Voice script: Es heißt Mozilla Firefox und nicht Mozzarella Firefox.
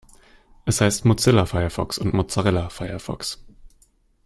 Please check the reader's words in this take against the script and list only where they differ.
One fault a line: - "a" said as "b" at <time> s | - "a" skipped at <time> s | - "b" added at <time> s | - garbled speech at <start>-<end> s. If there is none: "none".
- "nicht" skipped at 2.1 s